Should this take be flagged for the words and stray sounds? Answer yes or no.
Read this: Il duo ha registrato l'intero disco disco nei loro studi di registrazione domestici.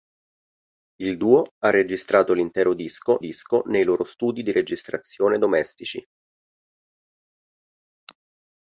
no